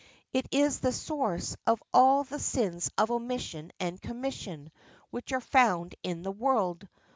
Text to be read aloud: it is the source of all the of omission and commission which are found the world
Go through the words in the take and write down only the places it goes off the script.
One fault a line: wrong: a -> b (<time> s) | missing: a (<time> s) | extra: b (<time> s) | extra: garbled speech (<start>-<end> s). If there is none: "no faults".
extra: sins (2.4 s)
extra: in (6.0 s)